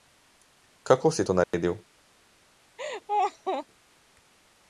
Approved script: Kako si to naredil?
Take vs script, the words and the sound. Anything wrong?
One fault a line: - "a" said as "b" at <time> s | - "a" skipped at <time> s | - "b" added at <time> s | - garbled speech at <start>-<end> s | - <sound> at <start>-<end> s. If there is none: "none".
- dropout at 1.4-1.5 s
- laugh at 2.8-3.7 s